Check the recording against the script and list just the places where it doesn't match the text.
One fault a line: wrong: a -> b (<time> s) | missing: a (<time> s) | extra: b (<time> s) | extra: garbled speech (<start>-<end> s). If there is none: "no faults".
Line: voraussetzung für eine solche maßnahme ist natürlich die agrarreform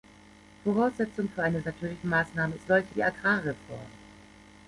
wrong: solche -> natürlich (1.7 s)
wrong: natürlich -> solche (2.6 s)